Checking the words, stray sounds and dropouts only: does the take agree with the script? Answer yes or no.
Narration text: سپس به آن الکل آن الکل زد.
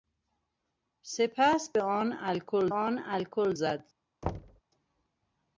no